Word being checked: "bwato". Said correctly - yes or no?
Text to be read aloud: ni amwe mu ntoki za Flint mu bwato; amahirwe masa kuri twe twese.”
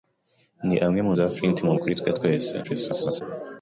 no